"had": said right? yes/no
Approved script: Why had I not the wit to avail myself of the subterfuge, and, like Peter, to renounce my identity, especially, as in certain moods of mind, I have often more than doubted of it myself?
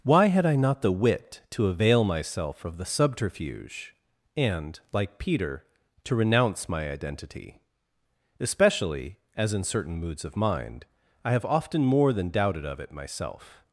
yes